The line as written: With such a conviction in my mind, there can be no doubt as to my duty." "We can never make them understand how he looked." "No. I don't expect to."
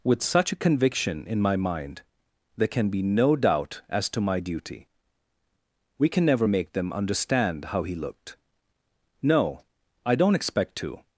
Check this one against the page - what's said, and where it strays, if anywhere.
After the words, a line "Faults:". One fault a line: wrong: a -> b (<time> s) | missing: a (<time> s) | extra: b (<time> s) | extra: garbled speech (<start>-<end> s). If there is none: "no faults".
With such a conviction in my mind, there can be no doubt as to my duty." "We can never make them understand how he looked." "No. I don't expect to."
Faults:
no faults